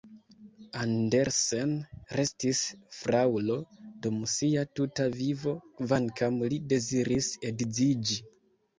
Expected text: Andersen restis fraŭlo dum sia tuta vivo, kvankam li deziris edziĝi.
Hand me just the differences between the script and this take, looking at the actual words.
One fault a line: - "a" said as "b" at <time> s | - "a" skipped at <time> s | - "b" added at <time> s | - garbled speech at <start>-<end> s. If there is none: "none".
none